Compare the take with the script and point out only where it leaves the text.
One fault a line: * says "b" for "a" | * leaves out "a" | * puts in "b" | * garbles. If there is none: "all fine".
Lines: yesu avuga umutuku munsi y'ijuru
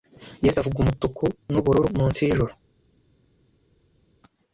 * puts in "n'ubururu"